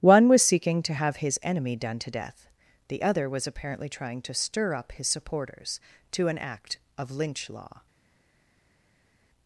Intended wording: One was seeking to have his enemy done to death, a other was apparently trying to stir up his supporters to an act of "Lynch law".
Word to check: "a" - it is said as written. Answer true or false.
false